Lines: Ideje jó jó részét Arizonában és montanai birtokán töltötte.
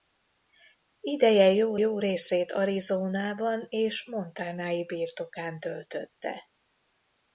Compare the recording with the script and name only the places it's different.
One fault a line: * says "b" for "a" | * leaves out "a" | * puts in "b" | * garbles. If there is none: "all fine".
all fine